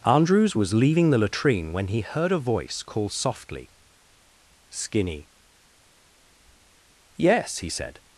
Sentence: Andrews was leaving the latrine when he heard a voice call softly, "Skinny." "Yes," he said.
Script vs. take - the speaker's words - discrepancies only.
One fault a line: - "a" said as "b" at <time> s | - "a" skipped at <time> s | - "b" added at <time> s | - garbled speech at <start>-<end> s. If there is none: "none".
none